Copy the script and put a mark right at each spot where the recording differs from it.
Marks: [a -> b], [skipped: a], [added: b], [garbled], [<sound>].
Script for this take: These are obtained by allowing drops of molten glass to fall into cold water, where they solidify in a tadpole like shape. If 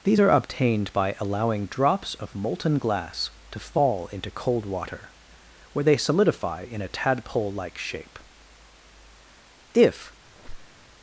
These are obtained by allowing drops of molten glass to fall into cold water, where they solidify in a tadpole like shape. If [squeak]